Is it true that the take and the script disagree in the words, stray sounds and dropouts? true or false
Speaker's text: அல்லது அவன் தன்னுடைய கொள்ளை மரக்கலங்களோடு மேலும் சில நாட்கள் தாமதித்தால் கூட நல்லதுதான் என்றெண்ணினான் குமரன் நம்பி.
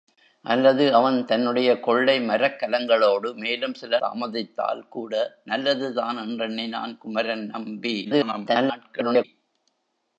true